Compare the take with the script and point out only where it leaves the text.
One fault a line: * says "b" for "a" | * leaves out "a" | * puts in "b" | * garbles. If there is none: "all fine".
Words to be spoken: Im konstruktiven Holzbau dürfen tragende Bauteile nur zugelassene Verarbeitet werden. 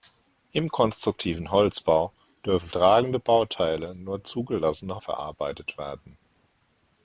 all fine